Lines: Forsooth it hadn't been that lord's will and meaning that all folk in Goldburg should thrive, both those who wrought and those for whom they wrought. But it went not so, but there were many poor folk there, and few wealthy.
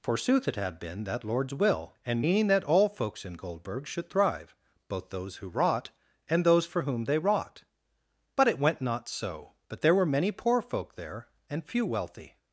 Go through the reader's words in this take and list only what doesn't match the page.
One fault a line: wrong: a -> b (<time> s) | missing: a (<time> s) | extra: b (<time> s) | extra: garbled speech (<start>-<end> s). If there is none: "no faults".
wrong: hadn't -> had (0.6 s)
wrong: folk -> folks (2.9 s)